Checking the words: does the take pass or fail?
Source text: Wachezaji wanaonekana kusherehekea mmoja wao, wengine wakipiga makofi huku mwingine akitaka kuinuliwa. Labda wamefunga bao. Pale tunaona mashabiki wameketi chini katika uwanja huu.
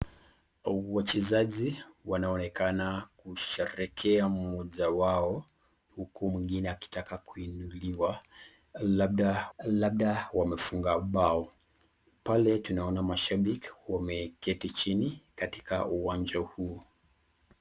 fail